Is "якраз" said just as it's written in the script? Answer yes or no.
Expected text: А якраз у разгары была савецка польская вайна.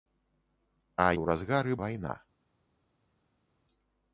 no